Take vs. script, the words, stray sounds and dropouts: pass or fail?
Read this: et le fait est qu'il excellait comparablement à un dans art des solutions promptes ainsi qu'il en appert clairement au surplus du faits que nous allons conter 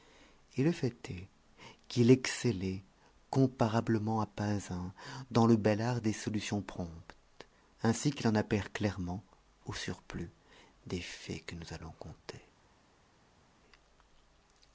fail